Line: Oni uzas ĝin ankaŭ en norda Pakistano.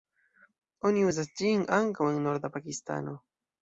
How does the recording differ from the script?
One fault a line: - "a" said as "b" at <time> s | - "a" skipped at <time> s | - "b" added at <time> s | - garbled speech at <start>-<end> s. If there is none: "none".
none